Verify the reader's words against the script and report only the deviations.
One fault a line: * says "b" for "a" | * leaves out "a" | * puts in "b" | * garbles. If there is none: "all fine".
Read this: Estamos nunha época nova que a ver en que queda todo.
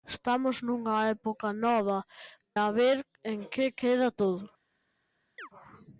* leaves out "que"